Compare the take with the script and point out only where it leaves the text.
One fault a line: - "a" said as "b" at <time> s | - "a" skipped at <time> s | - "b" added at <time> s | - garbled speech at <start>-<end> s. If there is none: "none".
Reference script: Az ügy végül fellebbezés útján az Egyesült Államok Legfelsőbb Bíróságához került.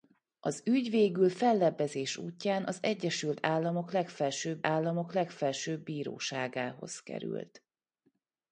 - "Államok Legfelsőbb" added at 4.7 s